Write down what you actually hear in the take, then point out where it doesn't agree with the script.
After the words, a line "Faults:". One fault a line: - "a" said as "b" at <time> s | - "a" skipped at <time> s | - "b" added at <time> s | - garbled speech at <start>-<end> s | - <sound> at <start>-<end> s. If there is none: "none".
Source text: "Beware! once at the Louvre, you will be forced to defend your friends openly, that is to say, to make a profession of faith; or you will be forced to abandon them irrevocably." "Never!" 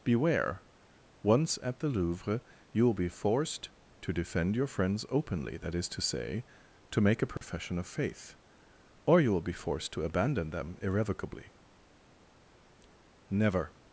"Beware! once at the Louvre, you will be forced to defend your friends openly, that is to say, to make a profession of faith; or you will be forced to abandon them irrevocably." "Never!"
Faults:
- dropout at 7.4-7.4 s